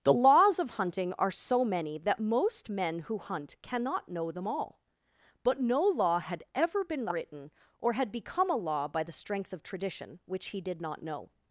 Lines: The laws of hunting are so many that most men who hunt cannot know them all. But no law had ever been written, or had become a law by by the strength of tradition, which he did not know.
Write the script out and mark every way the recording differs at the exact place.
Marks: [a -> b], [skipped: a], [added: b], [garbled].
The laws of hunting are so many that most men who hunt cannot know them all. But no law had ever been written, or had become a law by [skipped: by] the strength of tradition, which he did not know.